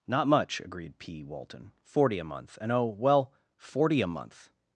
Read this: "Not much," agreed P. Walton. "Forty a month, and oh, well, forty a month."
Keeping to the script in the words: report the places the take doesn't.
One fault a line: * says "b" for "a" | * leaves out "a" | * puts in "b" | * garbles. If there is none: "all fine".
all fine